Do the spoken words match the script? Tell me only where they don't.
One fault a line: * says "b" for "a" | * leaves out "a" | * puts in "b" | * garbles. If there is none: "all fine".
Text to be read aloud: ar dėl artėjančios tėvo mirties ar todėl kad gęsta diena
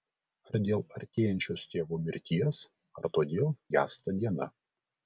* leaves out "kad"